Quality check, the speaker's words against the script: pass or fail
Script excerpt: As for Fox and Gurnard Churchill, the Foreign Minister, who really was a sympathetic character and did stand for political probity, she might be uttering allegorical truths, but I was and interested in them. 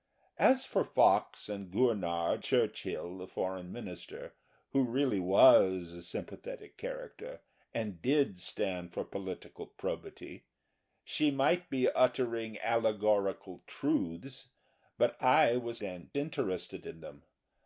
pass